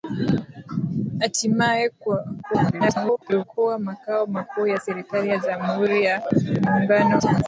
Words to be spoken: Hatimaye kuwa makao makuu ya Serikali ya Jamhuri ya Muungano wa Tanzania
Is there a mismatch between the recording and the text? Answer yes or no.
yes